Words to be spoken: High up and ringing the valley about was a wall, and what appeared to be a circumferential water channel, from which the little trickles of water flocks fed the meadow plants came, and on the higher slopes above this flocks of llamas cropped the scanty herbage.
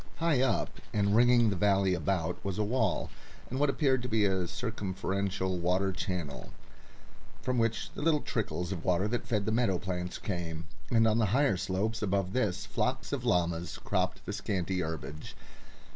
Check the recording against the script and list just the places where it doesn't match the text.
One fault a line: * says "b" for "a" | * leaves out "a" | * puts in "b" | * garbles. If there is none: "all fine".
* says "that" for "flocks"